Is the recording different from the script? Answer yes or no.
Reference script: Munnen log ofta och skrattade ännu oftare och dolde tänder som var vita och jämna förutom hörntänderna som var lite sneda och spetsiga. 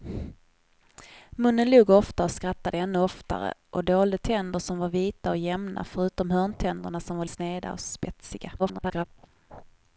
yes